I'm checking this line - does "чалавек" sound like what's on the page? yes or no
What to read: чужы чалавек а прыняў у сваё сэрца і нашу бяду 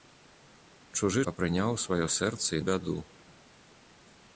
no